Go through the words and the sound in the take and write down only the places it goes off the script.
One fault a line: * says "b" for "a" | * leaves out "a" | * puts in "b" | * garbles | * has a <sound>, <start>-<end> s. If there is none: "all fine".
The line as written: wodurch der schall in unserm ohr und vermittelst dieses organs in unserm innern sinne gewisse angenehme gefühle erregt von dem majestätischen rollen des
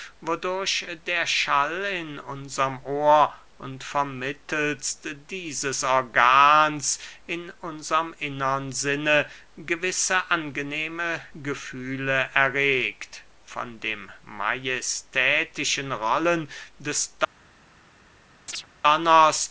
* has a chirp, 18.5-18.7 s